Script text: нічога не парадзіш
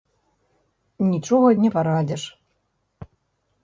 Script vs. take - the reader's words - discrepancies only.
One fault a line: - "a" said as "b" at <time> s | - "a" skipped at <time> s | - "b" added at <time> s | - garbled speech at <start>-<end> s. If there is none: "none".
none